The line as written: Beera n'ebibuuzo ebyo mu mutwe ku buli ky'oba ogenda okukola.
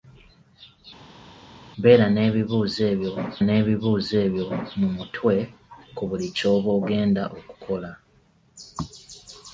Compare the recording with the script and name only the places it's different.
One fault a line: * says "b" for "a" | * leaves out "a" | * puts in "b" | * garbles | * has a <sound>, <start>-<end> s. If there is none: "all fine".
* puts in "n'ebibuuzo ebyo"